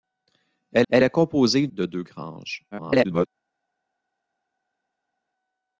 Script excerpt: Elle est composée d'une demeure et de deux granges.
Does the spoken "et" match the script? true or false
false